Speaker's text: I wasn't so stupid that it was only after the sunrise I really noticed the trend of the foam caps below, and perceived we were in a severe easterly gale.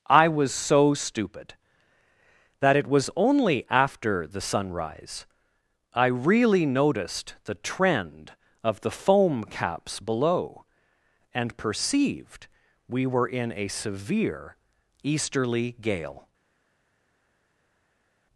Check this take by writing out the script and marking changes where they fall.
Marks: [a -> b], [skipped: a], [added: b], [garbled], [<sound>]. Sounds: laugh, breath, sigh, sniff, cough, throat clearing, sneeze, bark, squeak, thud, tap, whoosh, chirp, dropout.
I [wasn't -> was] so stupid that it was only after the sunrise I really noticed the trend of the foam caps below, and perceived we were in a severe easterly gale.